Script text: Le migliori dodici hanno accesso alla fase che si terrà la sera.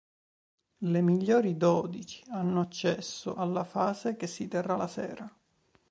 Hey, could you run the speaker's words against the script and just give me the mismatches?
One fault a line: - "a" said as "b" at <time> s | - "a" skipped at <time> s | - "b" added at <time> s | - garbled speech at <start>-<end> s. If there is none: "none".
none